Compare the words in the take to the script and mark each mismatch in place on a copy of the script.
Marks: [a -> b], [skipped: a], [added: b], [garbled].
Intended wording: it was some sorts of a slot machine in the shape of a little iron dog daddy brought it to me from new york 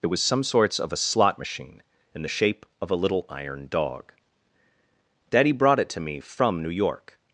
it was some sorts of a slot machine in the shape of a little iron dog daddy brought it to me from new york